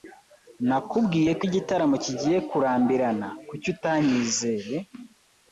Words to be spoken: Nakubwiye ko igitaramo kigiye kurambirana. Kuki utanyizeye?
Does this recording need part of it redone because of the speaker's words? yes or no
no